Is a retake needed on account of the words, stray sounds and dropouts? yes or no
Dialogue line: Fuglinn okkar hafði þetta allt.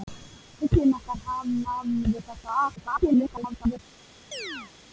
yes